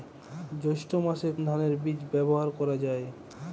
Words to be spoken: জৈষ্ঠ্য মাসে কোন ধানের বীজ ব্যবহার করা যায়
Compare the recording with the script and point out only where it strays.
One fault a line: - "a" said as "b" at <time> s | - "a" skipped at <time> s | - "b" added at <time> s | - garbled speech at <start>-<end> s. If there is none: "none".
- "কোন" skipped at 1.3 s